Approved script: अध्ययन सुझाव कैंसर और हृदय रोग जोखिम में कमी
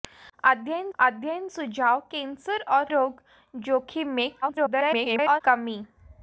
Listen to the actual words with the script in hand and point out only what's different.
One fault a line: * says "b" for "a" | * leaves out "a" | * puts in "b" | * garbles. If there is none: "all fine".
* puts in "अध्ययन"
* leaves out "हृदय"
* garbles